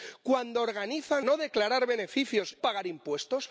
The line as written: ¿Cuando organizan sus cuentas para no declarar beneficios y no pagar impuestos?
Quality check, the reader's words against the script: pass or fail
fail